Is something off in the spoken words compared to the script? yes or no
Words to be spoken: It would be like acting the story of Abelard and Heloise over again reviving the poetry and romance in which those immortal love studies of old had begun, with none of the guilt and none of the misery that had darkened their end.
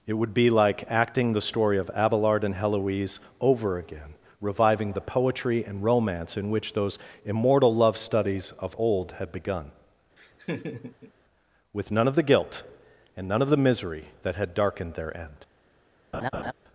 no